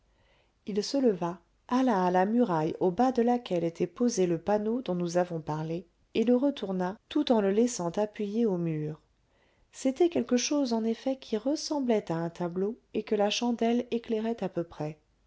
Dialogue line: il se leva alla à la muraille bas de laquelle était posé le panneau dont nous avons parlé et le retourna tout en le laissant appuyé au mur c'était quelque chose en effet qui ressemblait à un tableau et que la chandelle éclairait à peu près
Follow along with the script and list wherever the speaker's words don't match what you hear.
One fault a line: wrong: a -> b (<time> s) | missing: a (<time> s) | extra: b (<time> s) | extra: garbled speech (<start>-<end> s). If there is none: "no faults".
extra: au (2.8 s)